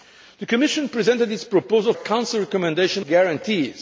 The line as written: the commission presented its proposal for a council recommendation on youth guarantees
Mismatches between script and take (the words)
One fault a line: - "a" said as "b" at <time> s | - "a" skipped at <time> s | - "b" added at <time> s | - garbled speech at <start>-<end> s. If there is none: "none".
- "for" skipped at 1.9 s
- "on youth" skipped at 3.0 s